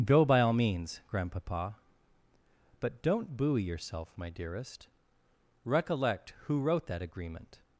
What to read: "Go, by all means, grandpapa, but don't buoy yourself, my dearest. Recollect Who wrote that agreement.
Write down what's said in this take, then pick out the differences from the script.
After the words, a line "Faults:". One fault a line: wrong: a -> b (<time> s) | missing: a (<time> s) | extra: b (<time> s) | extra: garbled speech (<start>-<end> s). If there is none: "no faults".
"Go, by all means, grandpapa, but don't buoy yourself, my dearest. Recollect Who wrote that agreement.
Faults:
no faults